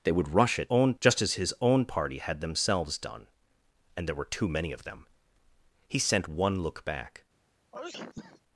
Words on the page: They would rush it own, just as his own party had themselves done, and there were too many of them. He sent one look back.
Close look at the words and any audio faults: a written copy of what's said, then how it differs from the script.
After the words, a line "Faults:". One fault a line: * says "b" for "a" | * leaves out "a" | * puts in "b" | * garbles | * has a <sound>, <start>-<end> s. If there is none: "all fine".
They would rush it own, just as his own party had themselves done, and there were too many of them. He sent one look back.
Faults:
* has a sneeze, 7.7-8.4 s